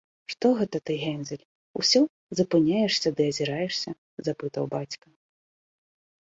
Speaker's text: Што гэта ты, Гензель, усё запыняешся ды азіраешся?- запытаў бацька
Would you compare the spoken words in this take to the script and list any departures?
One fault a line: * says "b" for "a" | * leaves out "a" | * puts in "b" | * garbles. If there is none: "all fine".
all fine